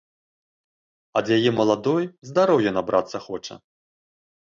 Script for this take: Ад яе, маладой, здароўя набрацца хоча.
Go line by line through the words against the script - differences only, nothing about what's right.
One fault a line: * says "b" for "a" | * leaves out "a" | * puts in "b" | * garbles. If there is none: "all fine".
all fine